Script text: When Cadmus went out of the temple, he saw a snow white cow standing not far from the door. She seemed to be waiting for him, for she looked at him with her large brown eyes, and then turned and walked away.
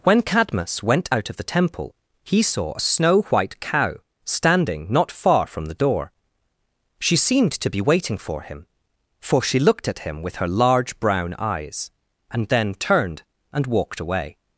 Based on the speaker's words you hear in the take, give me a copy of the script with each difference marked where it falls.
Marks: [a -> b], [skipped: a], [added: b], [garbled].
When Cadmus went out of the temple, he saw a snow white cow standing not far from the door. She seemed to be waiting for him, for she looked at him with her large brown eyes, and then turned and walked away.